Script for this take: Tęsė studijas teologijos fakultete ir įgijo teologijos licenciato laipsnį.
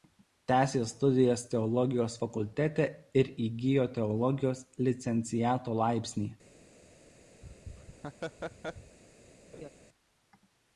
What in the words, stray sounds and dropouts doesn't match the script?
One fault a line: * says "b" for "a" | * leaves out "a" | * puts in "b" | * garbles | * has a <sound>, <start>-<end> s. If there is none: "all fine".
* has a laugh, 7.4-9.0 s
* has a laugh, 9.5-9.7 s